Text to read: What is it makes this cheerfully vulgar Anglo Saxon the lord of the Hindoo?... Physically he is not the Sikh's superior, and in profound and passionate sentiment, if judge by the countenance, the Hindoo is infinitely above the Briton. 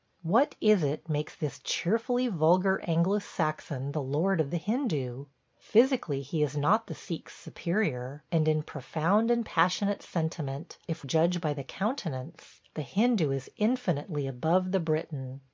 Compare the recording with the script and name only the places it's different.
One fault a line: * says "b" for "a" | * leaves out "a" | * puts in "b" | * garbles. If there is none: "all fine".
all fine